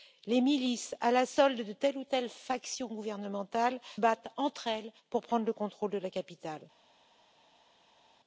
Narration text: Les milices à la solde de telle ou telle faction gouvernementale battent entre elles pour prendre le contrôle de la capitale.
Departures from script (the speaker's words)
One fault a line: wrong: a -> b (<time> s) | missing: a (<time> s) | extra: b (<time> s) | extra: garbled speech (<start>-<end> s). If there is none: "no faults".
no faults